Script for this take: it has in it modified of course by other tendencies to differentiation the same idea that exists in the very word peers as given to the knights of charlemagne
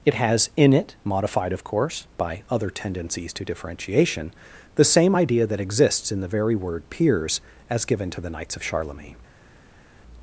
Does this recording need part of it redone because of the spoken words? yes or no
no